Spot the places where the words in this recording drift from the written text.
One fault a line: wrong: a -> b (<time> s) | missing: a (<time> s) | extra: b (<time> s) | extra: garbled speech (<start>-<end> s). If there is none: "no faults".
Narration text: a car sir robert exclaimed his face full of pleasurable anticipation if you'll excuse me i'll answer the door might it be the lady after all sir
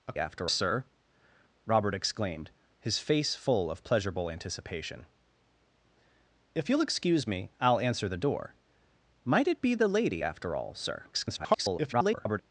wrong: car -> after (0.2 s)
extra: garbled speech (11.1-12.4 s)